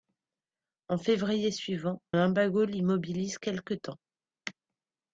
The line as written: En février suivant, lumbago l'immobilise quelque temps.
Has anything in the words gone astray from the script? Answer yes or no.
no